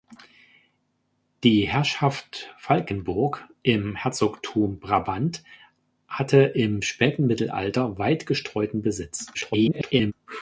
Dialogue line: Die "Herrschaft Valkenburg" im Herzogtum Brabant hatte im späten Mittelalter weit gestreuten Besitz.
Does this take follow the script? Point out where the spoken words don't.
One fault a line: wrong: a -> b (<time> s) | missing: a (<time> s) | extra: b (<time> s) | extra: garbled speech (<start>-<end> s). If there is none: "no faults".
extra: garbled speech (9.3-10.1 s)